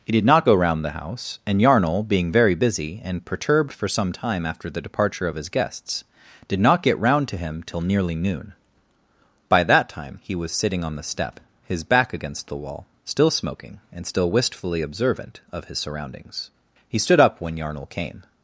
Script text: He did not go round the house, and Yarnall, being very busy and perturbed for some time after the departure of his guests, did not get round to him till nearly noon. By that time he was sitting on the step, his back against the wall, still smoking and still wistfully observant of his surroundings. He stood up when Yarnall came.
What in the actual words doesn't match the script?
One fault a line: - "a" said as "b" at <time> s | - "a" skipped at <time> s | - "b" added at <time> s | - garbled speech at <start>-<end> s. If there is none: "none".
none